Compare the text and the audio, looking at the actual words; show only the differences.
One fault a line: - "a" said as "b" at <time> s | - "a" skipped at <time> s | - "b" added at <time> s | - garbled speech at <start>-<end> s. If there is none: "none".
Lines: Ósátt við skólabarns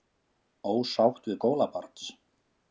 none